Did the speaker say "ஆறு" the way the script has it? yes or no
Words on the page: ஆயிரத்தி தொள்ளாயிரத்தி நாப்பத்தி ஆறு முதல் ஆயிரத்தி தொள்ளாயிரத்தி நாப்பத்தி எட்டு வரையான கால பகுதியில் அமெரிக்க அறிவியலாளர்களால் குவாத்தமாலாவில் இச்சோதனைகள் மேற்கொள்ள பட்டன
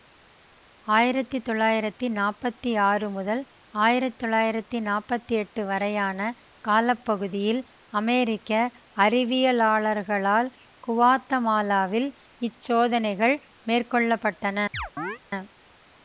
yes